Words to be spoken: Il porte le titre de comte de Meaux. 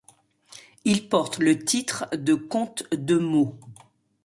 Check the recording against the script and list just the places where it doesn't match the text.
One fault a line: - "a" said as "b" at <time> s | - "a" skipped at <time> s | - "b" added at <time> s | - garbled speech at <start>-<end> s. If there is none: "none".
none